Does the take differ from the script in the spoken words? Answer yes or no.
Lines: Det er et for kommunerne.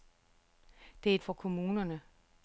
no